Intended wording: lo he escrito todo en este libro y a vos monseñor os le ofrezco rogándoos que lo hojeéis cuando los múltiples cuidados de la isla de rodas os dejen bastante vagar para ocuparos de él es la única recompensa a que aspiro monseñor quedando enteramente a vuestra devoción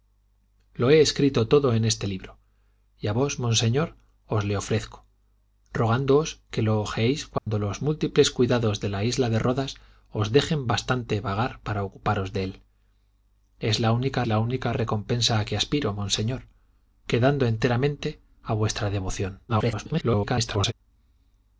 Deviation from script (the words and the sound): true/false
true